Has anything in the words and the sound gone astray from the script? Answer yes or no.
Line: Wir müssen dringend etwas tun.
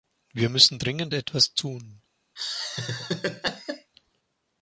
yes